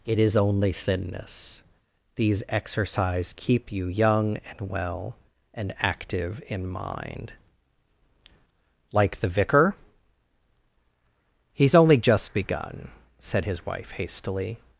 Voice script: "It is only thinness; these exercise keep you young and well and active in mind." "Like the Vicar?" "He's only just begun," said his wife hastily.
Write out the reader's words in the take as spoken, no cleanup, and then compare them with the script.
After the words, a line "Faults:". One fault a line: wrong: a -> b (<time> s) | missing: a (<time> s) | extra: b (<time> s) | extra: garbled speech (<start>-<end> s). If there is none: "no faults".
"It is only thinness; these exercise keep you young and well and active in mind." "Like the Vicar?" "He's only just begun," said his wife hastily.
Faults:
no faults